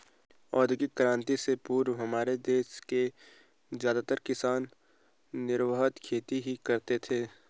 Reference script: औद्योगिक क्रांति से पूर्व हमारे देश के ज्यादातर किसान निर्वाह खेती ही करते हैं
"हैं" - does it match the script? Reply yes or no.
no